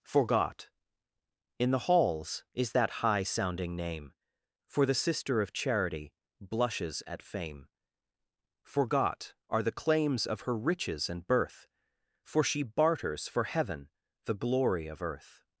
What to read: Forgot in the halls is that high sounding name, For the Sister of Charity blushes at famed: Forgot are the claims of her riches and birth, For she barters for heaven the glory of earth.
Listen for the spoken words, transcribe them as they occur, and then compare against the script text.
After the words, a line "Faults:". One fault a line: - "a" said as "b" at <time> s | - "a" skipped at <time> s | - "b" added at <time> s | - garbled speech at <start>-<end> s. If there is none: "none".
Forgot in the halls is that high sounding name, For the Sister of Charity blushes at fame: Forgot are the claims of her riches and birth, For she barters for heaven the glory of earth.
Faults:
- "famed" said as "fame" at 7.2 s